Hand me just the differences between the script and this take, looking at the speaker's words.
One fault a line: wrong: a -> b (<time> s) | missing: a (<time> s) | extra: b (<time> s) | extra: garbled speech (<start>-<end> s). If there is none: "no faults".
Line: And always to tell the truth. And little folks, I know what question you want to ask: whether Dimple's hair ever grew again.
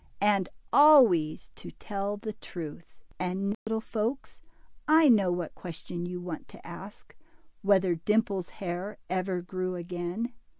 no faults